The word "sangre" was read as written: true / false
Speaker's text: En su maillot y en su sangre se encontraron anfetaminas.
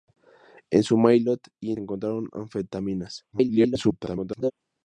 false